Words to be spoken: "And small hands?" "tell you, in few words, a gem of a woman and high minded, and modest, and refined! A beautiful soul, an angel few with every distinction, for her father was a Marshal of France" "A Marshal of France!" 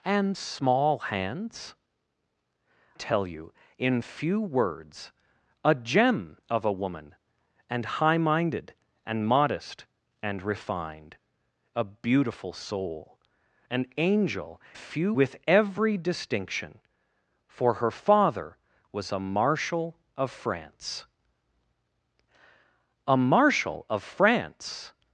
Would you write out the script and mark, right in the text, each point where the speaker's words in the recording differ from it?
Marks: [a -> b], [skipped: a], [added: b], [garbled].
"And small hands?" "tell you, in few words, a gem of a woman and high minded, and modest, and refined! A beautiful soul, an angel few with every distinction, for her father was a Marshal of France" "A Marshal of France!"